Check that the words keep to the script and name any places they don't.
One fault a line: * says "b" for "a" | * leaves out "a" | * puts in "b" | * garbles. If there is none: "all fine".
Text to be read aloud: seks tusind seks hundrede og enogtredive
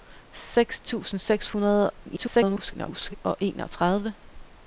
* garbles